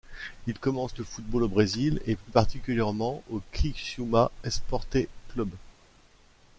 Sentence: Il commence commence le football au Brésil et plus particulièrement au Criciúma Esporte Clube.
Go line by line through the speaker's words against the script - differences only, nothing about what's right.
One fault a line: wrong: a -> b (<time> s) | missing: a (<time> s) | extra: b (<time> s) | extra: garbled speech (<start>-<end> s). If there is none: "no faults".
missing: commence (1.0 s)